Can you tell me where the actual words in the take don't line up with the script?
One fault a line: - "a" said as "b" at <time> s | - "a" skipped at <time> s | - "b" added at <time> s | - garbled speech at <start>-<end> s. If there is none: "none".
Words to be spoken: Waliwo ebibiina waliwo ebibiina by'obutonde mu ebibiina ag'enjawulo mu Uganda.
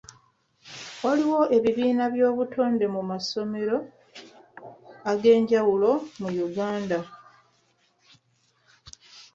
- "waliwo ebibiina" skipped at 2.0 s
- "ebibiina" said as "masomero" at 3.1 s